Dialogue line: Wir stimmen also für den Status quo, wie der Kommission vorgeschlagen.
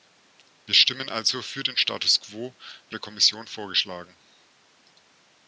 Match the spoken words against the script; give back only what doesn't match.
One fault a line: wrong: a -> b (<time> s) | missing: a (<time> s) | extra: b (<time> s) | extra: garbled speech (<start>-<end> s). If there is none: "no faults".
no faults